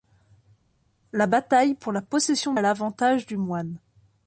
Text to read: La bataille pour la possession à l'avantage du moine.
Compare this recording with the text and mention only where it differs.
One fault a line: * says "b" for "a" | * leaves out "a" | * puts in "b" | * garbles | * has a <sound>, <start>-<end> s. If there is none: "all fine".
all fine